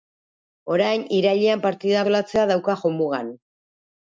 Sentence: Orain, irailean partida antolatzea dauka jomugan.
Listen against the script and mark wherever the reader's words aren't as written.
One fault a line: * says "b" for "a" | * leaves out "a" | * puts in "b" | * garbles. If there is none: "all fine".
all fine